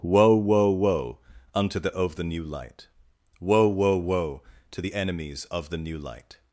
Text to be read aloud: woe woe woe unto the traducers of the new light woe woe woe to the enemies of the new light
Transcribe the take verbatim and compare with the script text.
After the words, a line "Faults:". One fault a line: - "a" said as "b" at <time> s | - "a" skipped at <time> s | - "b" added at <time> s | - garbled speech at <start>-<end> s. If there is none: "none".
woe woe woe unto the of the new light woe woe woe to the enemies of the new light
Faults:
- "traducers" skipped at 1.9 s